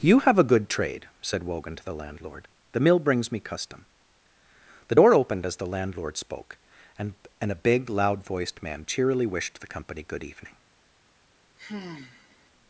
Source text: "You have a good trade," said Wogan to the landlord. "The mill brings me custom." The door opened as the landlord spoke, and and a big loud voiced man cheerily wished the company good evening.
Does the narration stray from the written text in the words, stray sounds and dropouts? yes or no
yes